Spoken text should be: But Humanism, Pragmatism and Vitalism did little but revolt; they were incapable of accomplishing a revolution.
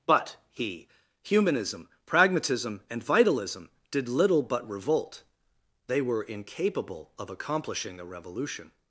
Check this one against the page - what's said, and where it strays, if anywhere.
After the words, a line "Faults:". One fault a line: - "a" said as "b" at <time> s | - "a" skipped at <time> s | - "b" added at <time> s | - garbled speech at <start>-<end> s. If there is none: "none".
But he Humanism, Pragmatism and Vitalism did little but revolt; they were incapable of accomplishing a revolution.
Faults:
- "he" added at 0.5 s